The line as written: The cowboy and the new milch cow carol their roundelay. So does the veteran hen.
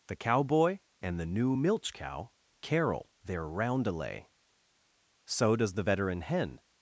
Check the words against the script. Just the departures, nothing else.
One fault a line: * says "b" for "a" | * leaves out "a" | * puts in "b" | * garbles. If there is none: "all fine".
all fine